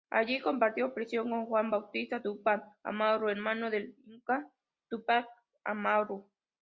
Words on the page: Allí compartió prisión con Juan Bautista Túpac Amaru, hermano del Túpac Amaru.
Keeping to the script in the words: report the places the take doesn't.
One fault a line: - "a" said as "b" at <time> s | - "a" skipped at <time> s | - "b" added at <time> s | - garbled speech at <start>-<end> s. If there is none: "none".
- "inca" added at 4.0 s